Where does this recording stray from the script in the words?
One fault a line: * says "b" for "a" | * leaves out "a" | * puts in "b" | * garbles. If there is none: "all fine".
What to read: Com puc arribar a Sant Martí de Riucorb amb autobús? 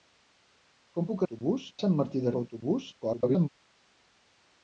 * says "autobús" for "arribar"
* leaves out "Riucorb"
* garbles